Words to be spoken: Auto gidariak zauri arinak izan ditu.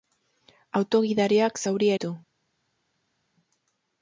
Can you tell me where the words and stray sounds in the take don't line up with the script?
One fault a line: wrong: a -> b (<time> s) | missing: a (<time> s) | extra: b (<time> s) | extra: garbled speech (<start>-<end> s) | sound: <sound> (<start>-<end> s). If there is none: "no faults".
missing: arinak izan (1.9 s)